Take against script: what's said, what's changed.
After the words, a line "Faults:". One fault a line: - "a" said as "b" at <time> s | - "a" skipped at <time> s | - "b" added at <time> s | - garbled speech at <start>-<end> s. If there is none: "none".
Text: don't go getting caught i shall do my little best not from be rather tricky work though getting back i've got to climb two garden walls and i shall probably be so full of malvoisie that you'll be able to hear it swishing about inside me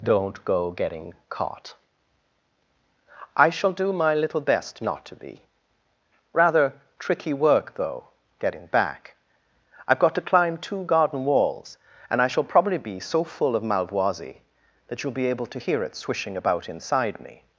don't go getting caught i shall do my little best not to be rather tricky work though getting back i've got to climb two garden walls and i shall probably be so full of malvoisie that you'll be able to hear it swishing about inside me
Faults:
- "from" said as "to" at 5.0 s